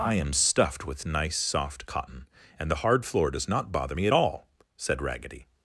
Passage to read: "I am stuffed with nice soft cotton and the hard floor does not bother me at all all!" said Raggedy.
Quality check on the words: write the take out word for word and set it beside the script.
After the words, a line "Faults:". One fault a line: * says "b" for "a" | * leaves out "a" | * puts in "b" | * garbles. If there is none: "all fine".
"I am stuffed with nice soft cotton and the hard floor does not bother me at all!" said Raggedy.
Faults:
* leaves out "all"